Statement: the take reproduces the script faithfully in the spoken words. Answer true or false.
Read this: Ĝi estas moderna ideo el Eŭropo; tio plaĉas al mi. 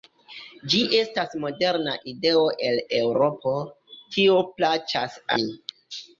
false